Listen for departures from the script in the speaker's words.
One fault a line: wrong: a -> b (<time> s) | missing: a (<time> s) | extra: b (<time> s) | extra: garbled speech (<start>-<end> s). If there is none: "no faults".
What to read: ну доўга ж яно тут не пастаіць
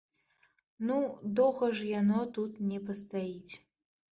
no faults